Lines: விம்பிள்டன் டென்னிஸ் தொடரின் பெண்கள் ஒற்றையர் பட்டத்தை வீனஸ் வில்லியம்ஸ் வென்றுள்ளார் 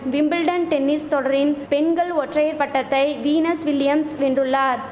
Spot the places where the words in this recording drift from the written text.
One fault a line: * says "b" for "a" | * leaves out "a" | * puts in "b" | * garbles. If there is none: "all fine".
all fine